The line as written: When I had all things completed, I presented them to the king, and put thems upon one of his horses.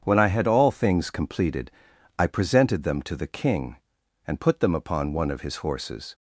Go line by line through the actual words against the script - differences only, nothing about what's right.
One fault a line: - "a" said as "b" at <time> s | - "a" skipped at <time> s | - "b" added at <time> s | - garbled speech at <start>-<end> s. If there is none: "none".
- "thems" said as "them" at 4.6 s